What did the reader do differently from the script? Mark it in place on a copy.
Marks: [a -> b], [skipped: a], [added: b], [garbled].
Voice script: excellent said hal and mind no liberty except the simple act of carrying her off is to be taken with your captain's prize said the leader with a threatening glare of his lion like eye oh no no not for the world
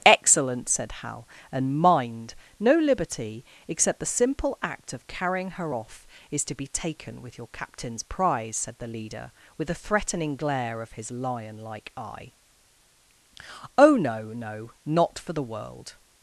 excellent said hal and mind no liberty except the simple act of carrying her off is to be taken with your captain's prize said the leader with a threatening glare of his lion like eye oh no no not for the world